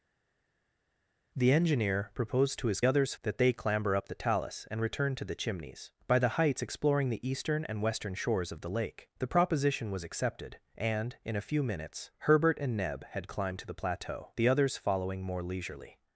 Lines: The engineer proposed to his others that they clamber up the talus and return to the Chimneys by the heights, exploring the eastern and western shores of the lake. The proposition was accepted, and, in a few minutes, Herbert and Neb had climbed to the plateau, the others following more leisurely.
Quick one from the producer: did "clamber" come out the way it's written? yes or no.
yes